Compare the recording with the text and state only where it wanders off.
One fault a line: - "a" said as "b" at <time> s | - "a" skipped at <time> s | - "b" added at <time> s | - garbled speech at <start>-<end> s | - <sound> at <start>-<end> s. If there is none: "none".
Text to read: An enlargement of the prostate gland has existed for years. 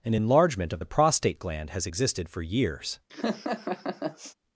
- laugh at 3.1-4.3 s